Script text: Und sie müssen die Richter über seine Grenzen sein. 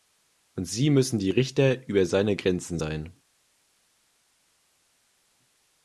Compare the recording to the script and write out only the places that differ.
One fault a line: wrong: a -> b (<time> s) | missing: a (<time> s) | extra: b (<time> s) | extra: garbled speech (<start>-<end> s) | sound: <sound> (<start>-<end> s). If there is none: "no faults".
no faults